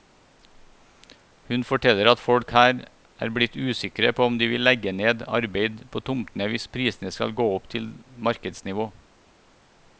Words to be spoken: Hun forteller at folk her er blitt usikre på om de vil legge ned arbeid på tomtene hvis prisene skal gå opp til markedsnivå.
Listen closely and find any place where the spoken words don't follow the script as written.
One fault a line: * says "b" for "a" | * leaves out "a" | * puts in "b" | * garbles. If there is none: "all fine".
all fine